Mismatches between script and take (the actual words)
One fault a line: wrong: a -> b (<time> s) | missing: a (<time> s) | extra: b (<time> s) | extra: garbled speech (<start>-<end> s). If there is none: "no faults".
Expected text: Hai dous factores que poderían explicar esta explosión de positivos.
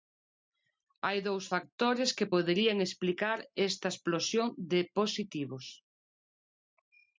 no faults